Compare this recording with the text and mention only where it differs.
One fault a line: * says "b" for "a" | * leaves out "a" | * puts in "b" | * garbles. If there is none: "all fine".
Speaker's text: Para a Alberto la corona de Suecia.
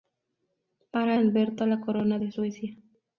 all fine